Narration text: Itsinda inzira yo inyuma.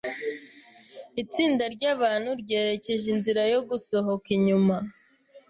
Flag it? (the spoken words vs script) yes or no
yes